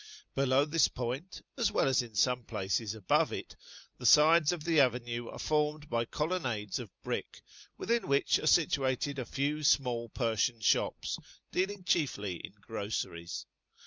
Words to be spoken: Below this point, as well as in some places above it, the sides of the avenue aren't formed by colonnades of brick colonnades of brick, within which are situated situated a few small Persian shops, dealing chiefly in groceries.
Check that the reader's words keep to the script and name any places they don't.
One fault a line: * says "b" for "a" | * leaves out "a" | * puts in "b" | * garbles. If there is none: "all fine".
* says "are" for "aren't"
* leaves out "colonnades of brick"
* leaves out "situated"